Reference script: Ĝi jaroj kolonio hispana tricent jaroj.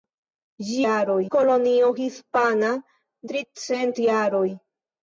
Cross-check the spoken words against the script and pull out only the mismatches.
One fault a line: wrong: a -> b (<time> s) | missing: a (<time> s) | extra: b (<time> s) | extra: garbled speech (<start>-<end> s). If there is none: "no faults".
no faults